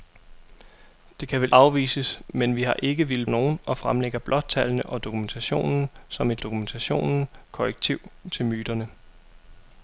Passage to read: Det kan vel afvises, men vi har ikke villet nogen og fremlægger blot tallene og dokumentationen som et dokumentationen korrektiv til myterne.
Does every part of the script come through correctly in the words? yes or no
yes